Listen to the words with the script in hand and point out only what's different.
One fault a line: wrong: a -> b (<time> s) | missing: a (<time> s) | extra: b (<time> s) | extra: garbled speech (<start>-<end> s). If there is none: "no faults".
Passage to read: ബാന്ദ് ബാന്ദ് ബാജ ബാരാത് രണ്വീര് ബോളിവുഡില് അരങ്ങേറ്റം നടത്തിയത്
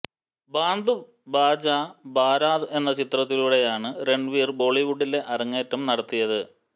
missing: ബാന്ദ് (0.9 s)
extra: എന്ന ചിത്രത്തിലൂടെയാണ് (2.7 s)